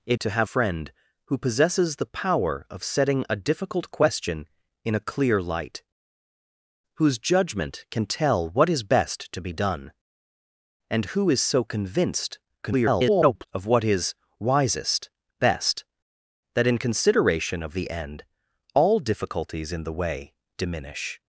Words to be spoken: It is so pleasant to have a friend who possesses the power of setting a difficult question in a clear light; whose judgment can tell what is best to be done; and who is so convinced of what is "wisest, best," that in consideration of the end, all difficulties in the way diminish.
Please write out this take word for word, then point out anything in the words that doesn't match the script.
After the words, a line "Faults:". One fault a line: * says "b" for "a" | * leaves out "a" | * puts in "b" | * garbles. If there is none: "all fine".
It to have friend who possesses the power of setting a difficult question in a clear light; whose judgment can tell what is best to be done; and who is so convinced [garbled] of what is "wisest, best," that in consideration of the end, all difficulties in the way diminish.
Faults:
* leaves out "is so pleasant"
* leaves out "a"
* garbles